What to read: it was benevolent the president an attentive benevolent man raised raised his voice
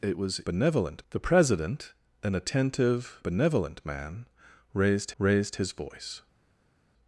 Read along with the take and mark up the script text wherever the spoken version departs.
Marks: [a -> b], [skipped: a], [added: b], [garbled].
it was benevolent the president an attentive benevolent man raised raised his voice